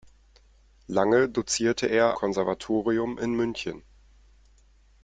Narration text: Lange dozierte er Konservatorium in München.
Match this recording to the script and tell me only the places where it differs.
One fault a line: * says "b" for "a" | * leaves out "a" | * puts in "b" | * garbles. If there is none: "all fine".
all fine